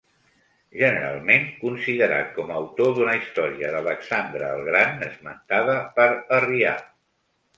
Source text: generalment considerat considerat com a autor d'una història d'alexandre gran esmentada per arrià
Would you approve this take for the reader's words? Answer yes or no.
no